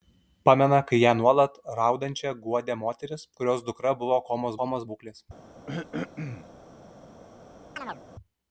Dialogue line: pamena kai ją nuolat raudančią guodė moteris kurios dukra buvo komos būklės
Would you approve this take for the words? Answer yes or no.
no